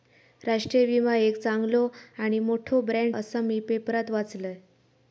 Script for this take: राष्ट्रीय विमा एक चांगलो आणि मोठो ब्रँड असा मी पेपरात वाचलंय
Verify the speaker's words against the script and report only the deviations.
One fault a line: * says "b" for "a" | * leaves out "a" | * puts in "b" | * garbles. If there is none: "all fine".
all fine